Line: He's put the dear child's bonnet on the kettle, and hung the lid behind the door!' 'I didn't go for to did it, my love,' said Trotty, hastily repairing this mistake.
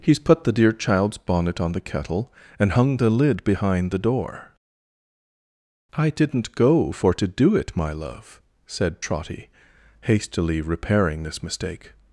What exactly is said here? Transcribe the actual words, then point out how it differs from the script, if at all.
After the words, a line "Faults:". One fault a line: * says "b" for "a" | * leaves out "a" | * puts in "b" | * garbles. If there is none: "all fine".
He's put the dear child's bonnet on the kettle, and hung the lid behind the door!' 'I didn't go for to do it, my love,' said Trotty, hastily repairing this mistake.
Faults:
* says "do" for "did"